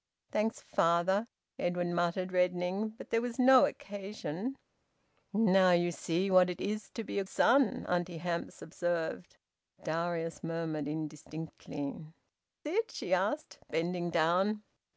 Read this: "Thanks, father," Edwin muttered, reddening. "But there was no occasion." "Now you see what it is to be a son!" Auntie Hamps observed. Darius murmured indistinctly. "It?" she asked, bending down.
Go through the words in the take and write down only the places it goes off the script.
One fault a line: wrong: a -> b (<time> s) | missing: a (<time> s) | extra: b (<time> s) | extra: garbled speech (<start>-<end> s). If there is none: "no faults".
no faults